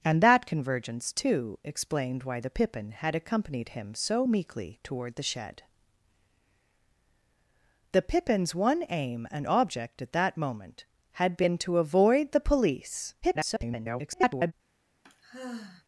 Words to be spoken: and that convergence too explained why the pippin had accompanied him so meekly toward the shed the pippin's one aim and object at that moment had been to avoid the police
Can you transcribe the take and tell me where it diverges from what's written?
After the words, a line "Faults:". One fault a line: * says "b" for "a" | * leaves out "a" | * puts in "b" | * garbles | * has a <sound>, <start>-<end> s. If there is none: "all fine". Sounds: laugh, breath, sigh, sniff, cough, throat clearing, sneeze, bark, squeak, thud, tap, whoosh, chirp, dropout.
and that convergence too explained why the pippin had accompanied him so meekly toward the shed the pippin's one aim and object at that moment had been to avoid the police [garbled]
Faults:
* garbles
* has a sigh, 15.0-15.8 s